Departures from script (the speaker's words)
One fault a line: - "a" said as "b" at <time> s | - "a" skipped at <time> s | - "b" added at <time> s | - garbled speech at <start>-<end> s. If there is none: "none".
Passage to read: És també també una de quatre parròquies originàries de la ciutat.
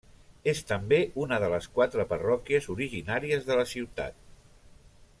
- "també" skipped at 1.0 s
- "les" added at 1.6 s